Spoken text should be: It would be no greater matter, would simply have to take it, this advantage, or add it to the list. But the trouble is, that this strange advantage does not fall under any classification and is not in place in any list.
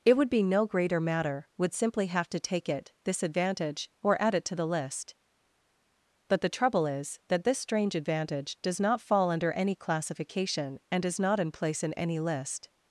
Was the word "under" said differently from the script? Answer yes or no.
no